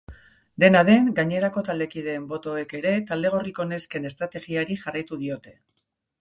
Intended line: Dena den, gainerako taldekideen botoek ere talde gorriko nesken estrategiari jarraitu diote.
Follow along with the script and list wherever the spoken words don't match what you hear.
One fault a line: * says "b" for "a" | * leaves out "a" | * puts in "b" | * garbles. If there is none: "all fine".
all fine